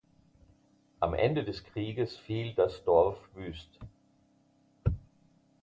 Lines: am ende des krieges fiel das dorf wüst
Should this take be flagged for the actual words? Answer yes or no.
no